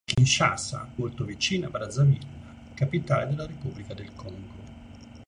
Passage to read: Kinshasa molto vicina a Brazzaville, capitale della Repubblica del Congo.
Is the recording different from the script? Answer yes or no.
no